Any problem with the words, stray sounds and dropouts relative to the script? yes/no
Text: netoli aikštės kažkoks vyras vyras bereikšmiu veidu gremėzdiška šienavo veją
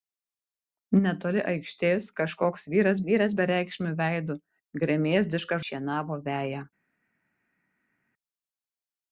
no